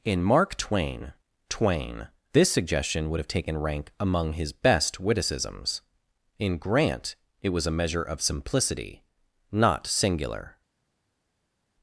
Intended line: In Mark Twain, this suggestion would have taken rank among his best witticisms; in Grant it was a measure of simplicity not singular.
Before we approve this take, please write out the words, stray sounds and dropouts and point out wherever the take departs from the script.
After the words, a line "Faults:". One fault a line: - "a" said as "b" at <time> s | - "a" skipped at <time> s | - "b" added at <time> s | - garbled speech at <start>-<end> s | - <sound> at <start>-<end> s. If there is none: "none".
In Mark Twain Twain, this suggestion would have taken rank among his best witticisms; in Grant it was a measure of simplicity not singular.
Faults:
- "Twain" added at 1.5 s